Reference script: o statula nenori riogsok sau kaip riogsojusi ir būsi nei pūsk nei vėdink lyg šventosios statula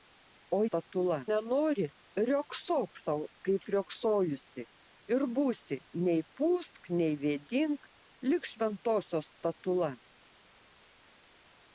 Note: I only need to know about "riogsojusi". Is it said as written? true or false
true